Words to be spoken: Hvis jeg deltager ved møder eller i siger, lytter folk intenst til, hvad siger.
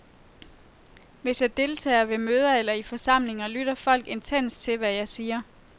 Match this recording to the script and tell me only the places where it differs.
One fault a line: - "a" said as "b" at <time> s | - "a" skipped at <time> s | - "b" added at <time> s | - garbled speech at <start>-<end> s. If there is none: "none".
- "siger" said as "forsamlinger" at 2.8 s
- "jeg" added at 4.9 s